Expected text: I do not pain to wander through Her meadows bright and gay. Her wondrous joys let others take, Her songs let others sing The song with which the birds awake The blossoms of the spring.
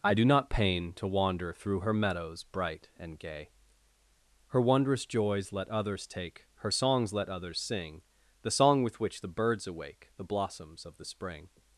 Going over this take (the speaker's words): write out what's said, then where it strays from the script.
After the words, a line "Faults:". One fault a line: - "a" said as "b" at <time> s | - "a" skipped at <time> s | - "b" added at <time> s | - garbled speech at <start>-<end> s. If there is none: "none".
I do not pain to wander through Her meadows bright and gay. Her wondrous joys let others take, Her songs let others sing The song with which the birds awake The blossoms of the spring.
Faults:
none